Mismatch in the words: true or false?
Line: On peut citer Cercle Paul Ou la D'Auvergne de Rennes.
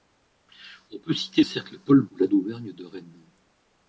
false